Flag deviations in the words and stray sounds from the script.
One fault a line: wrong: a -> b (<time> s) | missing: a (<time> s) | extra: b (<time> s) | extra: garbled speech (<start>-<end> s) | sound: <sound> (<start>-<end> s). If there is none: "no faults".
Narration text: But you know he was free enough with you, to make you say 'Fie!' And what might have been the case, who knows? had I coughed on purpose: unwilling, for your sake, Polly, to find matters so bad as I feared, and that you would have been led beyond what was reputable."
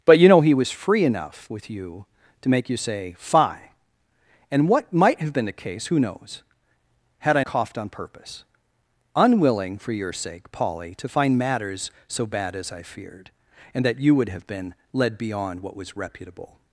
no faults